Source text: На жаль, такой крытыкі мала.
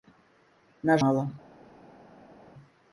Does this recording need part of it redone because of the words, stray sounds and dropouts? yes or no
yes